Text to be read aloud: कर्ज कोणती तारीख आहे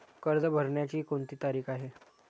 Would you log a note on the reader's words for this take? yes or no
yes